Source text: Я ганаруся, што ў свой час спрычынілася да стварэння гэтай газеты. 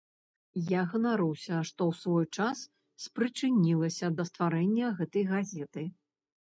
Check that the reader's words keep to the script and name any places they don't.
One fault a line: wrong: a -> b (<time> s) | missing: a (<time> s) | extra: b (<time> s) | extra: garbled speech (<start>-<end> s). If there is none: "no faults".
no faults